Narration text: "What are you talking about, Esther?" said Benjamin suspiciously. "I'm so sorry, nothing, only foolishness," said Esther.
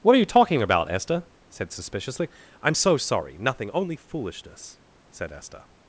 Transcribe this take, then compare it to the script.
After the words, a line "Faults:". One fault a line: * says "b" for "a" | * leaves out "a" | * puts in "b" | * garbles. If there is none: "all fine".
"What are you talking about, Esther?" said suspiciously. "I'm so sorry, nothing, only foolishness," said Esther.
Faults:
* leaves out "Benjamin"